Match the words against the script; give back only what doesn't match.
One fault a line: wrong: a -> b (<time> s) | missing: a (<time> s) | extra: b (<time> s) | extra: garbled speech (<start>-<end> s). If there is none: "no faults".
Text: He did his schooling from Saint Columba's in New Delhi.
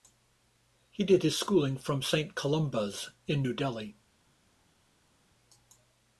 no faults